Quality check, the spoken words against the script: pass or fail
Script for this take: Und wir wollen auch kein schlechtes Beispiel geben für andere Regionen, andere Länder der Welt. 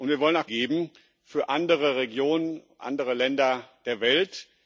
fail